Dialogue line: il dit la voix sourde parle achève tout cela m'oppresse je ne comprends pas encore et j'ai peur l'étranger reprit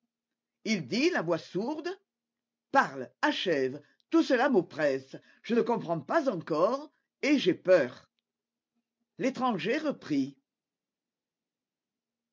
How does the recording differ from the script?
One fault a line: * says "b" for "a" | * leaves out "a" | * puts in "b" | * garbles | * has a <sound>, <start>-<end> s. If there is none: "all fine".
all fine